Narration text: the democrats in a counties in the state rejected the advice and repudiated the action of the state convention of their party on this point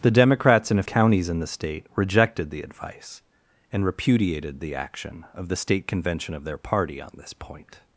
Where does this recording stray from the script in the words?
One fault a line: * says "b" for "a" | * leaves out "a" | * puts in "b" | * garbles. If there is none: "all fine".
all fine